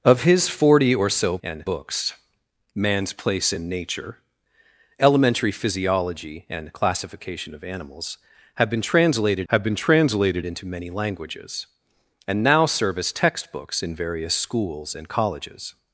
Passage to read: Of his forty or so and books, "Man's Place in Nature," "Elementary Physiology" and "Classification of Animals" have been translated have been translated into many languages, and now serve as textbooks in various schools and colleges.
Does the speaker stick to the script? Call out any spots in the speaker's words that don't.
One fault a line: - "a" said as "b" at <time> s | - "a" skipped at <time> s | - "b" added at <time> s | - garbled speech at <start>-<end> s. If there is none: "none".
none